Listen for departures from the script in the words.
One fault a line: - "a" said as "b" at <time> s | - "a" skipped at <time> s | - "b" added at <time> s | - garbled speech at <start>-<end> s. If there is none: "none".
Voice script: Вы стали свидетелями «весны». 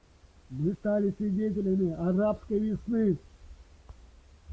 - "Вы" said as "Мы" at 0.5 s
- "арабской" added at 1.9 s